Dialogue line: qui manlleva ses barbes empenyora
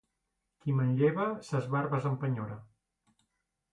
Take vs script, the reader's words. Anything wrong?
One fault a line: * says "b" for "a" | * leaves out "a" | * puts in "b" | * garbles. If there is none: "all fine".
all fine